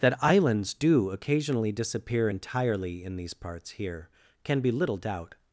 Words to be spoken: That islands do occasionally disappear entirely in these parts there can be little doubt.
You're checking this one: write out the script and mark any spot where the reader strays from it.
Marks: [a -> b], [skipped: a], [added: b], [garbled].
That islands do occasionally disappear entirely in these parts [there -> here] can be little doubt.